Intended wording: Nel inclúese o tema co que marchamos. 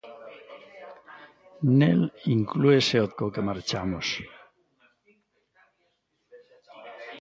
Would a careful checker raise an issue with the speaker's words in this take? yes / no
yes